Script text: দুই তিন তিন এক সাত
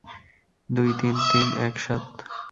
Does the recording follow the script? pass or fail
pass